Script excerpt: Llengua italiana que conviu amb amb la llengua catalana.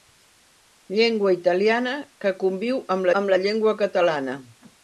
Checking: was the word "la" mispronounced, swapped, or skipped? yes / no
no